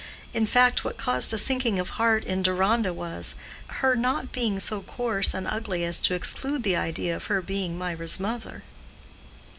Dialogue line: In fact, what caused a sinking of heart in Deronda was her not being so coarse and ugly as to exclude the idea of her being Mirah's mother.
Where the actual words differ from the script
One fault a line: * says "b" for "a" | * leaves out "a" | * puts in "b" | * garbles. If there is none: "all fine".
all fine